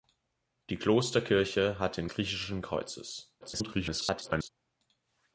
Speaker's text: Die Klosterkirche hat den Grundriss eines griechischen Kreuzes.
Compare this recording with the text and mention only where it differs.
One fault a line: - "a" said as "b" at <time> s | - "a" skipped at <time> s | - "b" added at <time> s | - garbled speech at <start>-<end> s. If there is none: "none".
- "Grundriss eines" skipped at 2.1 s
- garbled speech at 3.4-4.5 s